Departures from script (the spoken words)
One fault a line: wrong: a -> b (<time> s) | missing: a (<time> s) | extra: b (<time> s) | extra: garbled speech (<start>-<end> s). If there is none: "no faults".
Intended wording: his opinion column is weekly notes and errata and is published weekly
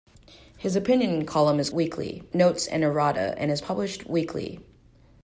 no faults